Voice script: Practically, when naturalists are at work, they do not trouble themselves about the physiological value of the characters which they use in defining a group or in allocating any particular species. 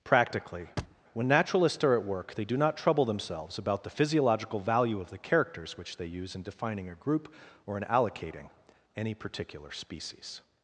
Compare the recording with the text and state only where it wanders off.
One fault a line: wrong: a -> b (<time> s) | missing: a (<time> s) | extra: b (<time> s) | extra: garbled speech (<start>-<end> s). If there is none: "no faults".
no faults